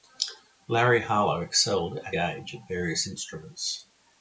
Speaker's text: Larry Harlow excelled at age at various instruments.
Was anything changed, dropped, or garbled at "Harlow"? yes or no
no